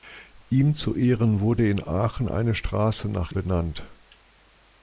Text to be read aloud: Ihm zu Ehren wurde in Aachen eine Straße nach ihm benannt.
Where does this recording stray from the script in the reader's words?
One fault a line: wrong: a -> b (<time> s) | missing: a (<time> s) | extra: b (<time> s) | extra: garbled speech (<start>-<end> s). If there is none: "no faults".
missing: ihm (3.3 s)